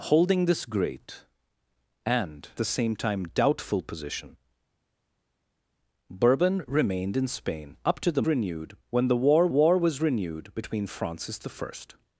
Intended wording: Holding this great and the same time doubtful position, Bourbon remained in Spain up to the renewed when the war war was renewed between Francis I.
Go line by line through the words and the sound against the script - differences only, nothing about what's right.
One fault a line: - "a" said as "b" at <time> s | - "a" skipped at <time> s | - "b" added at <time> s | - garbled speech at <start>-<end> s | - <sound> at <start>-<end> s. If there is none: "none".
none